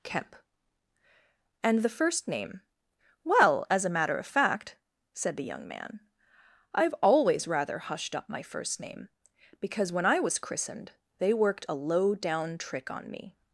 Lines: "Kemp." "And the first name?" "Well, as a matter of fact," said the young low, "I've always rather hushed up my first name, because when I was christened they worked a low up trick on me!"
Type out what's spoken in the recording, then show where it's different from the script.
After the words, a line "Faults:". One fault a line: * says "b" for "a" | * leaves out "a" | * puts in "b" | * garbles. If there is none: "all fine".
"Kemp." "And the first name?" "Well, as a matter of fact," said the young man, "I've always rather hushed up my first name, because when I was christened they worked a low down trick on me!"
Faults:
* says "man" for "low"
* says "down" for "up"